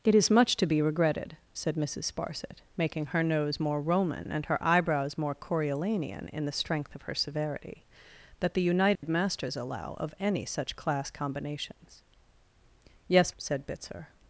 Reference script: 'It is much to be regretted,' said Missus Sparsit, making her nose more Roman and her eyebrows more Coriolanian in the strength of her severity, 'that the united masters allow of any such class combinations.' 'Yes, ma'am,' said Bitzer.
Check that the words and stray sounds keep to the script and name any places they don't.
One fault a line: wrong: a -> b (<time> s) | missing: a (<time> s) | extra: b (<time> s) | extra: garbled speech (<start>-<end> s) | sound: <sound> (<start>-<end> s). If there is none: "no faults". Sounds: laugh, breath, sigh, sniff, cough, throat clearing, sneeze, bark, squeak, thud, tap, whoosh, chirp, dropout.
sound: dropout (9.0-9.0 s)
missing: ma'am (13.4 s)